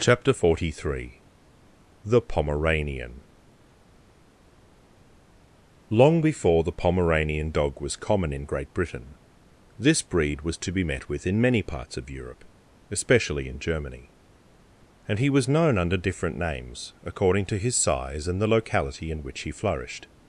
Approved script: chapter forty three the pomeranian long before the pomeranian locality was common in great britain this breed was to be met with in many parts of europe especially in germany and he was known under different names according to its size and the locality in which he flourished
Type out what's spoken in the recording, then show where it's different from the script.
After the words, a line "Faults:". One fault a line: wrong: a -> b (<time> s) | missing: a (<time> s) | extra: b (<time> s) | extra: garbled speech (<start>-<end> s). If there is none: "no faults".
chapter forty three the pomeranian long before the pomeranian dog was common in great britain this breed was to be met with in many parts of europe especially in germany and he was known under different names according to his size and the locality in which he flourished
Faults:
wrong: locality -> dog (7.5 s)
wrong: its -> his (17.6 s)